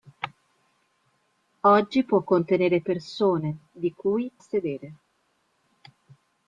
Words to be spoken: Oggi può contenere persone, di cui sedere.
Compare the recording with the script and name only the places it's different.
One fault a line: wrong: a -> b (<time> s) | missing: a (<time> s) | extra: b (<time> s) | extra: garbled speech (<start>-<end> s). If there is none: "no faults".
no faults